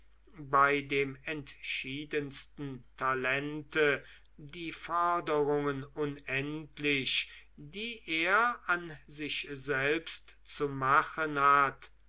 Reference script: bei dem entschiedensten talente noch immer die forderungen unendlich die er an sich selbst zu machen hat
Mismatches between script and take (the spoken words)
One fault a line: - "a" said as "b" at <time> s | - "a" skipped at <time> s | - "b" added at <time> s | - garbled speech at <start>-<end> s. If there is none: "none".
- "noch immer" skipped at 4.0 s